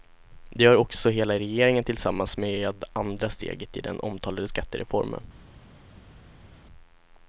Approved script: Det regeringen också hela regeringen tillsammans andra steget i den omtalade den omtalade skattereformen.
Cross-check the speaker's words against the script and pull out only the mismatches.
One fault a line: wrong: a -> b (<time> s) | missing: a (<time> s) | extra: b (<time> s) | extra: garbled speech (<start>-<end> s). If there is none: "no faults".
wrong: regeringen -> gör (0.6 s)
extra: med (2.4 s)
missing: den omtalade (4.5 s)